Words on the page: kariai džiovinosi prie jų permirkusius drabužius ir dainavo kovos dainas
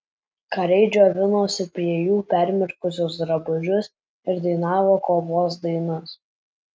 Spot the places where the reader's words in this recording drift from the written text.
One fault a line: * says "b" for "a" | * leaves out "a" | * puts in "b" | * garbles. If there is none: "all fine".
all fine